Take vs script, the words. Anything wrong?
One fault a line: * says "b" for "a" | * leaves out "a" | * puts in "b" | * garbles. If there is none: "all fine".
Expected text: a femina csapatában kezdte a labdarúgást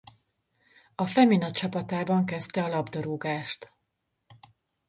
all fine